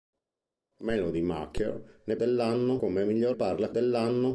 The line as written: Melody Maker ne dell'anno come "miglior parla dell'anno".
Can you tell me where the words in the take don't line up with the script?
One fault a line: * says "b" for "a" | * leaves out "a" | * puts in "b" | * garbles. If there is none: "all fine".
all fine